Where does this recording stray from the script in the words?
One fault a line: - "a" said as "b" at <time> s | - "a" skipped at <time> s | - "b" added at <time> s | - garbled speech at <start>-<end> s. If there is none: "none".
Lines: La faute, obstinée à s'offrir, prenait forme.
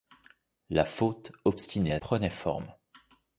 - "s'offrir" skipped at 2.0 s